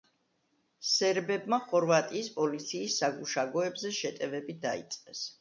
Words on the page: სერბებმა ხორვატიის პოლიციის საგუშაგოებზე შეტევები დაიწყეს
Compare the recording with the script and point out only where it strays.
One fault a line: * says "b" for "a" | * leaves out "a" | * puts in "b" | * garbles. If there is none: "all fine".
all fine